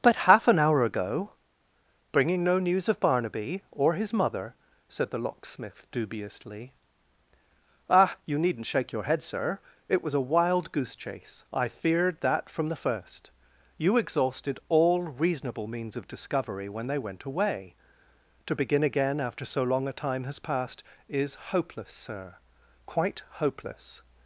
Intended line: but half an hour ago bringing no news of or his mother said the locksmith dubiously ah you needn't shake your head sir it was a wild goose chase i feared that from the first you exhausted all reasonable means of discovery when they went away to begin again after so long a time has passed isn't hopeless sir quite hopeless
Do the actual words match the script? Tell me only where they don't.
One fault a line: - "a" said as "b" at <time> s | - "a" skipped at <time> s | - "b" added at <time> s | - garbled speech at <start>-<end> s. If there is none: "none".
- "barnaby" added at 3.0 s
- "isn't" said as "is" at 21.1 s